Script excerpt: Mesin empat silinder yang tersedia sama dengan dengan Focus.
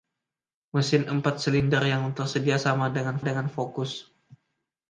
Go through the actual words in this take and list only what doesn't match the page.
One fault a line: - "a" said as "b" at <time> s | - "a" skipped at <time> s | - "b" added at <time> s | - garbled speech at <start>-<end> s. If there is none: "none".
none